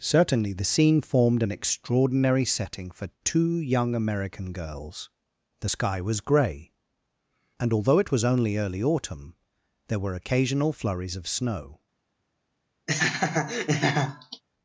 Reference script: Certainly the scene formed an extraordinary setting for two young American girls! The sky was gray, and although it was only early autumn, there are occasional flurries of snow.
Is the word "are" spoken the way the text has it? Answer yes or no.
no